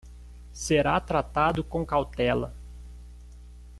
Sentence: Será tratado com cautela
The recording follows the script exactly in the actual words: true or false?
true